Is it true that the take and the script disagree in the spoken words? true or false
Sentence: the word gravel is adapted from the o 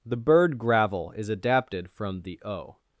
true